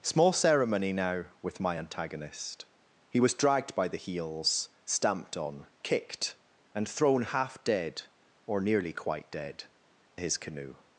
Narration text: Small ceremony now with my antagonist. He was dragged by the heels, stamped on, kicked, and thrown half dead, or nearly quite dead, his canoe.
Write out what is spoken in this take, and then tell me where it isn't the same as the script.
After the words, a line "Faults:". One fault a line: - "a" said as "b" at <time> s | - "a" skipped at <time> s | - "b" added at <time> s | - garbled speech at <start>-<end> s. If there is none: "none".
Small ceremony now with my antagonist. He was dragged by the heels, stamped on, kicked, and thrown half dead, or nearly quite dead, his canoe.
Faults:
none